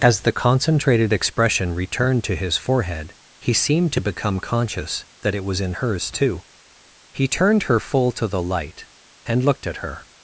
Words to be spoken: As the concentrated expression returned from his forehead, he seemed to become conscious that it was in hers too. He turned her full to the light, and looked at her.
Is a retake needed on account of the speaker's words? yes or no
yes